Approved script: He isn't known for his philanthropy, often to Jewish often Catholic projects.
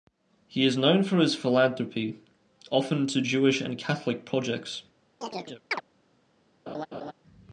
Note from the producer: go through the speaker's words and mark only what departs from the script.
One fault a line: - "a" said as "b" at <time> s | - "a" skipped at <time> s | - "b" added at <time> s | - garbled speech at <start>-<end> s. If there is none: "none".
- "isn't" said as "is" at 0.7 s
- "often" said as "and" at 3.6 s